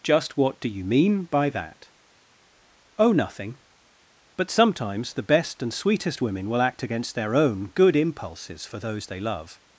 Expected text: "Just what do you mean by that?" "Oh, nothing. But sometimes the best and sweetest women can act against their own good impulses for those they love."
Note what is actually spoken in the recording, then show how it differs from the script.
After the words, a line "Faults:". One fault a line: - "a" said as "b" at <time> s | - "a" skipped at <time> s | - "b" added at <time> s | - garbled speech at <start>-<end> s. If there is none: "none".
"Just what do you mean by that?" "Oh, nothing. But sometimes the best and sweetest women will act against their own good impulses for those they love."
Faults:
- "can" said as "will" at 6.5 s